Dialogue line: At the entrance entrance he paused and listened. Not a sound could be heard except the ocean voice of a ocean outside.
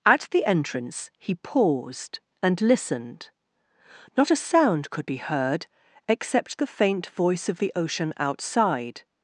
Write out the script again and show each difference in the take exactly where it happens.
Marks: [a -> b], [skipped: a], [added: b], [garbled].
At the entrance [skipped: entrance] he paused and listened. Not a sound could be heard except the [ocean -> faint] voice of [a -> the] ocean outside.